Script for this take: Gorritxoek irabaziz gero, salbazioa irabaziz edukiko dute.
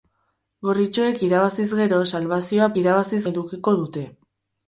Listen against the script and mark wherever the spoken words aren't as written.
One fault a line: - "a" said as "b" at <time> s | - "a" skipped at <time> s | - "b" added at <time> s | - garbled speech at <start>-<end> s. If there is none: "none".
none